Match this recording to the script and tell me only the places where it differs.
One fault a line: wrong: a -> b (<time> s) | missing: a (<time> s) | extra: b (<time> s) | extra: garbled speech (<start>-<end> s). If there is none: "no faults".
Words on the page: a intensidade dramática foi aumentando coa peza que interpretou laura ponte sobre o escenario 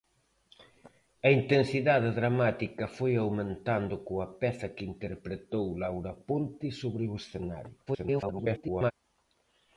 extra: garbled speech (7.9-8.9 s)